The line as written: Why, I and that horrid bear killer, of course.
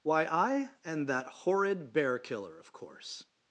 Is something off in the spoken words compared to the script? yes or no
no